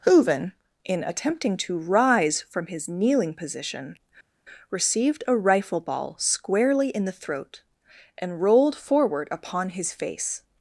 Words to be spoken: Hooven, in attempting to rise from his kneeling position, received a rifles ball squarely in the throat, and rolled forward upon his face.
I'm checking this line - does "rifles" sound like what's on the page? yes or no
no